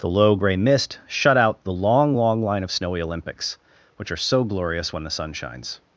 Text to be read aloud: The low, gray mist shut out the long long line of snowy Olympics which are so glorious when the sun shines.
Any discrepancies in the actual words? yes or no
no